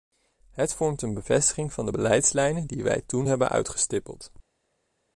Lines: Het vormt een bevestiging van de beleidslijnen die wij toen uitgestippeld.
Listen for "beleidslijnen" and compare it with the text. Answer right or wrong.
right